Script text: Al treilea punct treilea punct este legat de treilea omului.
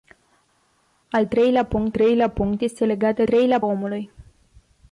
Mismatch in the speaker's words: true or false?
false